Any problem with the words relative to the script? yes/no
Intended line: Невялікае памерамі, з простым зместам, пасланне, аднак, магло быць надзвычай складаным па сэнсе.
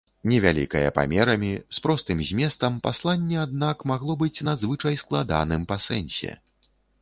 no